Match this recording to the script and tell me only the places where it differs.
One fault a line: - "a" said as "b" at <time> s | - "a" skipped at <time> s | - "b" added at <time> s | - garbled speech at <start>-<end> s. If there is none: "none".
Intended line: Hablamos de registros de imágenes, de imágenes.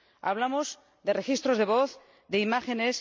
- "imágenes" said as "voz" at 1.7 s